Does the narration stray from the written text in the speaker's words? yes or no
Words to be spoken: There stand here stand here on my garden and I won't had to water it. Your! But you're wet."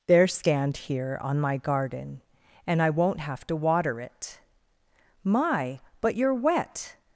yes